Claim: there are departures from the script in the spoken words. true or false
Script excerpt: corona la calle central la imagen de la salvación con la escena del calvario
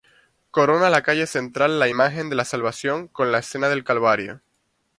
false